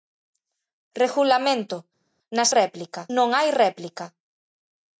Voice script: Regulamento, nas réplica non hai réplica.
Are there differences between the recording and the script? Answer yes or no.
no